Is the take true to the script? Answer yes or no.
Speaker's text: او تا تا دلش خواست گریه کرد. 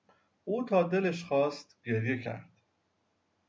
no